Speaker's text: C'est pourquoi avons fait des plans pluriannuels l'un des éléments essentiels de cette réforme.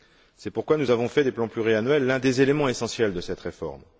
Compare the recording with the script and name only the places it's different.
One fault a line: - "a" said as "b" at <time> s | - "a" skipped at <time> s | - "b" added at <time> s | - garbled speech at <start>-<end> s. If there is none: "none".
- "nous" added at 0.8 s